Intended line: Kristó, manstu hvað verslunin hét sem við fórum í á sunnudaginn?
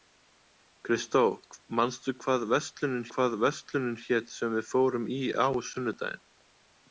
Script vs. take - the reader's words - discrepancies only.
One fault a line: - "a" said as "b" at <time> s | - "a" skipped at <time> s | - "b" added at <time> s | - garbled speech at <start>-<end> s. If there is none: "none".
- "hvað verslunin" added at 3.1 s